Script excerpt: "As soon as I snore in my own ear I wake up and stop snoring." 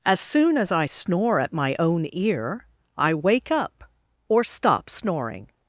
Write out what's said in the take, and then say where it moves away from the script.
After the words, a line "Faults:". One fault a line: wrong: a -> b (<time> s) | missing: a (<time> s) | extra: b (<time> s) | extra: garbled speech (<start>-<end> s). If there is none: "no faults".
"As soon as I snore at my own ear I wake up or stop snoring."
Faults:
wrong: in -> at (1.4 s)
wrong: and -> or (4.3 s)